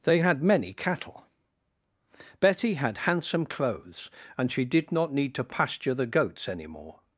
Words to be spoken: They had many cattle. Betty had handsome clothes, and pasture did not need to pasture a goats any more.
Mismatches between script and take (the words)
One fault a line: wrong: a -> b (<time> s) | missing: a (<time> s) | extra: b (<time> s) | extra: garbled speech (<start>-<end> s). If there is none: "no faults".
wrong: pasture -> she (4.5 s)
wrong: a -> the (5.9 s)